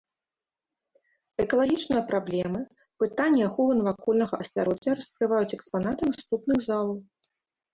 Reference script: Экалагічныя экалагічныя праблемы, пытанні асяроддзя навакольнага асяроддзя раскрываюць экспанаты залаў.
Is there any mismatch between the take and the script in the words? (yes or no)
yes